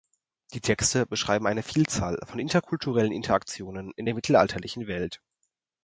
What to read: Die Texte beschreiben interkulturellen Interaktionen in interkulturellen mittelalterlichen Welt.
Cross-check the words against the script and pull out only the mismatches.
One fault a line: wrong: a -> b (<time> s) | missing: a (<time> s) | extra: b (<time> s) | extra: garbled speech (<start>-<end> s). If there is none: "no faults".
extra: eine Vielzahl von (1.4 s)
wrong: interkulturellen -> der (4.0 s)